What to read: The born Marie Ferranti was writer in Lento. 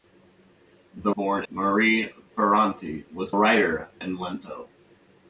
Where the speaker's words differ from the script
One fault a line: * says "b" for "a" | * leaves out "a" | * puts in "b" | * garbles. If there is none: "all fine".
all fine